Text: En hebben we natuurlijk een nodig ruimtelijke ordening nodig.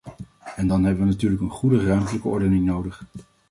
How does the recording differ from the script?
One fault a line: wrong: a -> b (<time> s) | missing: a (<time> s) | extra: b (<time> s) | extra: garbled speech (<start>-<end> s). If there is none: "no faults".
extra: dan (0.7 s)
wrong: nodig -> goede (1.5 s)